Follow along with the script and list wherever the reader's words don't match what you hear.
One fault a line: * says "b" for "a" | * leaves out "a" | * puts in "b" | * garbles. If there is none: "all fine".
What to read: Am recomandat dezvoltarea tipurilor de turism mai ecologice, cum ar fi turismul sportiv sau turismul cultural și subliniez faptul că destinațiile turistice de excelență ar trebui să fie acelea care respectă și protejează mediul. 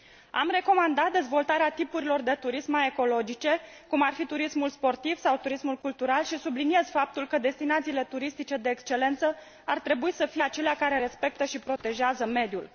all fine